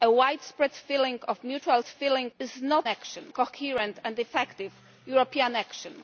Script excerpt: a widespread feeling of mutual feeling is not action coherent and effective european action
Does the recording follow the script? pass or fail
pass